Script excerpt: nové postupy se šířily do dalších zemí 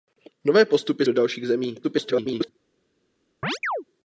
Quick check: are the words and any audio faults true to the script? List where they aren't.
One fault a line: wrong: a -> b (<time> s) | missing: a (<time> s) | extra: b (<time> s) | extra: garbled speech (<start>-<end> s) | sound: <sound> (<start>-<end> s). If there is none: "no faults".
missing: se šířily (1.1 s)
extra: garbled speech (1.8-2.5 s)
sound: chirp (3.4-3.8 s)